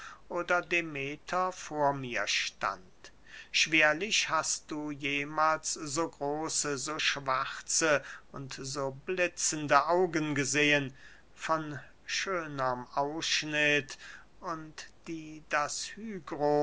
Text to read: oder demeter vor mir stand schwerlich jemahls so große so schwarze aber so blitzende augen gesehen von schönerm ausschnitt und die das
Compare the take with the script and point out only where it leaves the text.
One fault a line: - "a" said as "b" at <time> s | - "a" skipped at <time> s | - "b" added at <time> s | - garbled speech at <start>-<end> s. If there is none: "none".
- "hast du" added at 4.3 s
- "aber" said as "und" at 8.3 s